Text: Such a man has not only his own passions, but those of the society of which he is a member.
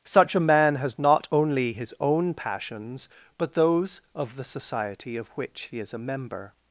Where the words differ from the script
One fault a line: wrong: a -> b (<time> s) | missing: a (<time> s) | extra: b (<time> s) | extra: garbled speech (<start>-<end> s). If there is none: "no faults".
no faults